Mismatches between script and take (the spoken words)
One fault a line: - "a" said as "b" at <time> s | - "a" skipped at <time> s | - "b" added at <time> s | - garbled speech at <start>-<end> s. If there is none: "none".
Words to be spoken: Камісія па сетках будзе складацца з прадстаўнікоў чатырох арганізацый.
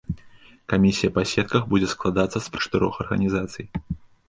- "прадстаўнікоў" skipped at 2.5 s